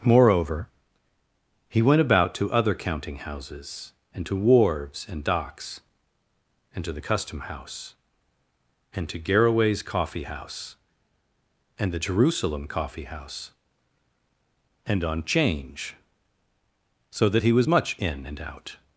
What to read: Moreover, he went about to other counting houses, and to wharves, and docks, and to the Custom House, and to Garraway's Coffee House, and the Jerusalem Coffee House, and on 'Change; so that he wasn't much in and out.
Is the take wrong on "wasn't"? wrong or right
wrong